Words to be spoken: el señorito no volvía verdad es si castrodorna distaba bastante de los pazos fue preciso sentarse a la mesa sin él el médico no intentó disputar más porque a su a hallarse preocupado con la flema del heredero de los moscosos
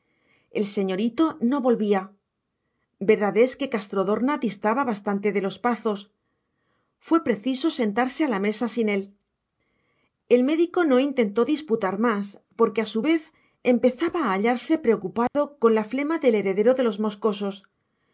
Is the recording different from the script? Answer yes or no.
yes